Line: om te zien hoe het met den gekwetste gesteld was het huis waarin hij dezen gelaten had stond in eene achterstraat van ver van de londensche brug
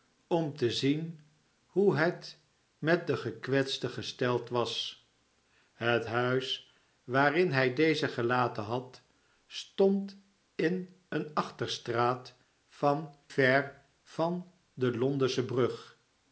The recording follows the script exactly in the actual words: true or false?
true